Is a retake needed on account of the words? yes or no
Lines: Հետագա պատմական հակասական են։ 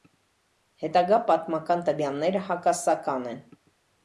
yes